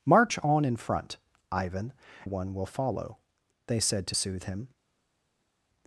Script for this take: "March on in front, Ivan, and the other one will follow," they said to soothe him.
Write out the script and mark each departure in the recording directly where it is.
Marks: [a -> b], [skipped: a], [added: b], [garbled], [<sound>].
"March on in front, Ivan, [skipped: and the other] one will follow," they said to soothe him.